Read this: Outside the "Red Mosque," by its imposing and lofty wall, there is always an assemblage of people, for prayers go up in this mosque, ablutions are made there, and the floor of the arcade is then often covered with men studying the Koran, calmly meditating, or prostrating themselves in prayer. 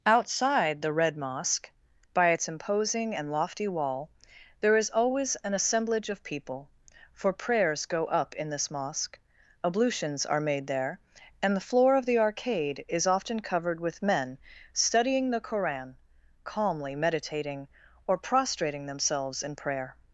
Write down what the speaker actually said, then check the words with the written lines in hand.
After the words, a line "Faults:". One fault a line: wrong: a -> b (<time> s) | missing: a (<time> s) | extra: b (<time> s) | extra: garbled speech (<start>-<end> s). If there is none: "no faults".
Outside the "Red Mosque," by its imposing and lofty wall, there is always an assemblage of people, for prayers go up in this mosque, ablutions are made there, and the floor of the arcade is often covered with men studying the Koran, calmly meditating, or prostrating themselves in prayer.
Faults:
missing: then (13.1 s)